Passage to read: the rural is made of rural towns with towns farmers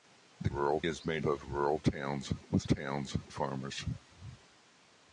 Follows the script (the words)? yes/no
yes